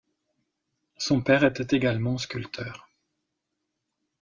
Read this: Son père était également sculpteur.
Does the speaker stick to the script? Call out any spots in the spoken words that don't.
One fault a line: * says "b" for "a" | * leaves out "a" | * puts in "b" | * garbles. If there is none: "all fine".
all fine